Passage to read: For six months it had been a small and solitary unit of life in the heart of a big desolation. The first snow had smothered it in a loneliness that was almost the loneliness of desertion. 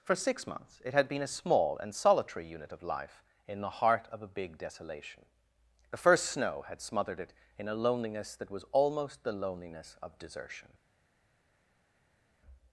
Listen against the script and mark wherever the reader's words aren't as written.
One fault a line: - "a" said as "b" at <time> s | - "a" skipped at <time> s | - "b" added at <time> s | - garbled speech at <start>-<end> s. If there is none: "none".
none